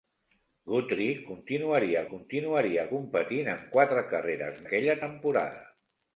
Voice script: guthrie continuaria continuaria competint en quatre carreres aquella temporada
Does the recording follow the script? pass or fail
pass